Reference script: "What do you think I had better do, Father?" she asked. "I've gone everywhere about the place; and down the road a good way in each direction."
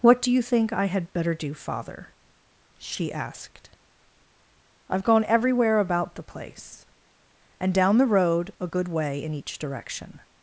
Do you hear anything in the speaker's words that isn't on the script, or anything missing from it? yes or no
no